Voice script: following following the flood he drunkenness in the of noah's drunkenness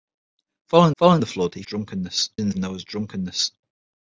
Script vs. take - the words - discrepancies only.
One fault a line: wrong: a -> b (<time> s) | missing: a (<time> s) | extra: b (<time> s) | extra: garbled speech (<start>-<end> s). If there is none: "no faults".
no faults